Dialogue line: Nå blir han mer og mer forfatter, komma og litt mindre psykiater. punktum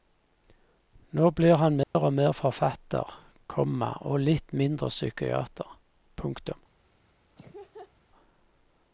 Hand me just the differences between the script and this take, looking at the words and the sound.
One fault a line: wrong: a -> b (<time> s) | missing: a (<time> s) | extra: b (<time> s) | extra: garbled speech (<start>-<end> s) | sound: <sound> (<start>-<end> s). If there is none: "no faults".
sound: dropout (1.8-2.0 s)
sound: laugh (7.4-7.9 s)